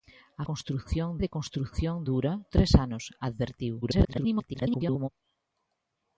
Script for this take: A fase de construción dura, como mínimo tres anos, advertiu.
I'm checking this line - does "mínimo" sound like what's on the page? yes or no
no